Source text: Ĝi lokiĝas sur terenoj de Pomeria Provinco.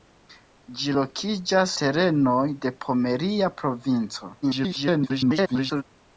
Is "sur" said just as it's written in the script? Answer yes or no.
no